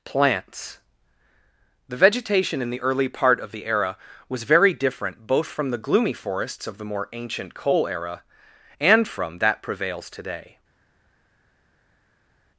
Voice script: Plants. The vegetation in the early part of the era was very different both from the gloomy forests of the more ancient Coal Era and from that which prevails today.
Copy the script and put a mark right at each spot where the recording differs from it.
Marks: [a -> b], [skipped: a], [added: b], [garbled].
Plants. The vegetation in the early part of the era was very different both from the gloomy forests of the more ancient Coal Era and from that [skipped: which] prevails today.